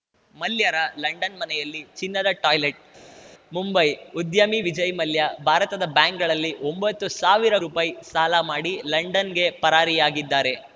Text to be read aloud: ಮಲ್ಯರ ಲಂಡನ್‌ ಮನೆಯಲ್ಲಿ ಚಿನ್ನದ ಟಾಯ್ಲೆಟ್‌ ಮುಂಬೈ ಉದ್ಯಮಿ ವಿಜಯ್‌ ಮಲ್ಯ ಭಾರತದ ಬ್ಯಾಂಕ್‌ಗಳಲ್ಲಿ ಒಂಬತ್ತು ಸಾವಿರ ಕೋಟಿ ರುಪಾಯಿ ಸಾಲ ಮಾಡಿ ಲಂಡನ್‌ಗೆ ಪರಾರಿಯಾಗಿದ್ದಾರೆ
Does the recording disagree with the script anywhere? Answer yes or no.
yes